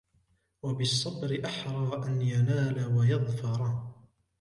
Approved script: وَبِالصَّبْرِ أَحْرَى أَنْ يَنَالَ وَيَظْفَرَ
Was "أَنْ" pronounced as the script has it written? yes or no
yes